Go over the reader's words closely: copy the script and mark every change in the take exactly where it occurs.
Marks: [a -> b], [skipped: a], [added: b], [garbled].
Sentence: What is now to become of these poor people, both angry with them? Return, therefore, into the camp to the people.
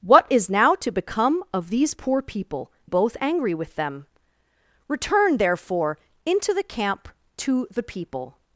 What is now to become of these poor people, both angry with them? Return, therefore, into the camp to the people.